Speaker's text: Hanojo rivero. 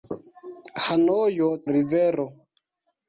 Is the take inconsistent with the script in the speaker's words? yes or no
no